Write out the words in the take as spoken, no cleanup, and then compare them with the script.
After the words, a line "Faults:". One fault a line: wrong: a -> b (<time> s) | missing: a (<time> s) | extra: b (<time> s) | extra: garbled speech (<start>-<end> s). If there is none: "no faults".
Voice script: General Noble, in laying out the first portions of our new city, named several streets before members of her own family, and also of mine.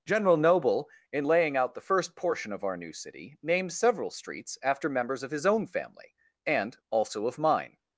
General Noble, in laying out the first portion of our new city, named several streets after members of his own family, and also of mine.
Faults:
wrong: portions -> portion (2.1 s)
wrong: before -> after (4.6 s)
wrong: her -> his (5.3 s)